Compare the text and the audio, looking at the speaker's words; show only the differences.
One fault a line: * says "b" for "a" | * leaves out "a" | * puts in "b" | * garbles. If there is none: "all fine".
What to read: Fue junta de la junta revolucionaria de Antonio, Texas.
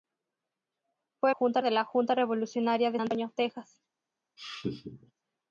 all fine